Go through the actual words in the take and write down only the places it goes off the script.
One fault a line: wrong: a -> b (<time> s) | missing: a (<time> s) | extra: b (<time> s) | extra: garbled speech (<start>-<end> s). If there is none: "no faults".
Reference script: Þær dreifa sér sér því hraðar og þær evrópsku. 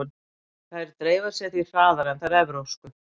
missing: sér (1.5 s)
wrong: og -> en (2.1 s)